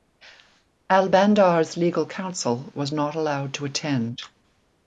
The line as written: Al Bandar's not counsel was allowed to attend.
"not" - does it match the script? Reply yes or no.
no